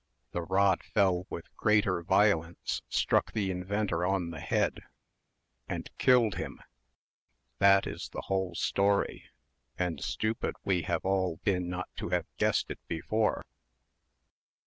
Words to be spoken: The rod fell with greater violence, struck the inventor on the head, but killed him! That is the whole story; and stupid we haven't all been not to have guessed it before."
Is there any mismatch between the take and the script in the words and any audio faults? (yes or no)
yes